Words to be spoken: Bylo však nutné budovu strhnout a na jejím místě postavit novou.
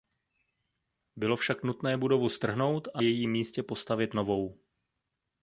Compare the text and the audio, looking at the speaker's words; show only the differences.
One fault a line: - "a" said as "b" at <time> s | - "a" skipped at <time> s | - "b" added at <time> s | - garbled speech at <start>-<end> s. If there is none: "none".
- "na" skipped at 3.0 s